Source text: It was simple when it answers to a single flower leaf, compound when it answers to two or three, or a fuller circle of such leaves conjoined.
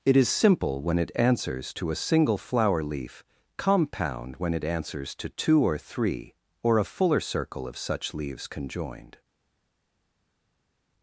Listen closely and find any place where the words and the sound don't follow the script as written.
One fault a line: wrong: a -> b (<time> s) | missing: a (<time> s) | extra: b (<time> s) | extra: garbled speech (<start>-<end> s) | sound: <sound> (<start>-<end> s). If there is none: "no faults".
wrong: was -> is (0.2 s)